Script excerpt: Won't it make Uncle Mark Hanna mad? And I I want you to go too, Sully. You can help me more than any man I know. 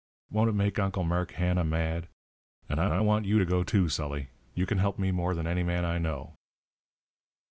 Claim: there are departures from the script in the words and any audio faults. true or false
false